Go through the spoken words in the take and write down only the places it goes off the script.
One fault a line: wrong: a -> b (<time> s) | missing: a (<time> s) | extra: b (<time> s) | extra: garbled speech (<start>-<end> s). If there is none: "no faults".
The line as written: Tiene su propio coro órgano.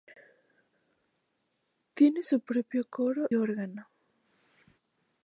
no faults